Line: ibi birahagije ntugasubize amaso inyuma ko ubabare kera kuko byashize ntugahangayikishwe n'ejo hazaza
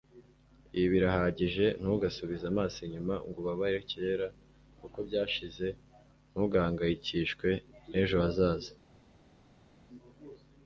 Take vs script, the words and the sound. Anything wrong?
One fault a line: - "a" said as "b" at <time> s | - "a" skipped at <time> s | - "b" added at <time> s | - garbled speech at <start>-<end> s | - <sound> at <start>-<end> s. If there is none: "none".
- "ko" said as "ngo" at 3.3 s